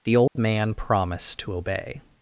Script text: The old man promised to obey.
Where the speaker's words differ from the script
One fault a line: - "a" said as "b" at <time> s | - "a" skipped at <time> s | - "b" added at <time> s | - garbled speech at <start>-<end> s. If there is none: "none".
none